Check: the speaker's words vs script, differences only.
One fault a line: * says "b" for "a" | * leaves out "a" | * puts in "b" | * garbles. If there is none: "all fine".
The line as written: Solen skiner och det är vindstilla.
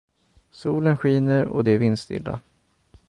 all fine